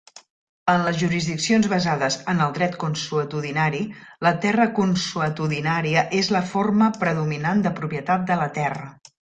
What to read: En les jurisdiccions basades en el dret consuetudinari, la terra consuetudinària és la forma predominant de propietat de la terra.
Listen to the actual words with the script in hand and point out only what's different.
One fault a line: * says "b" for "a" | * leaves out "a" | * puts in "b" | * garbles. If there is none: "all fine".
all fine